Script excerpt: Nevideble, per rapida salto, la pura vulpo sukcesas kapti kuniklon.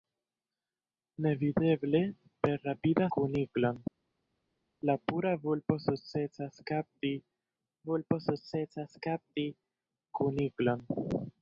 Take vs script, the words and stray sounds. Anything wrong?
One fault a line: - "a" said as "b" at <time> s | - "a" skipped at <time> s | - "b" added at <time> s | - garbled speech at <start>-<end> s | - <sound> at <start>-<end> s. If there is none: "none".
- "salto" said as "kuniklon" at 3.2 s
- "vulpo sukcesas kapti" added at 7.9 s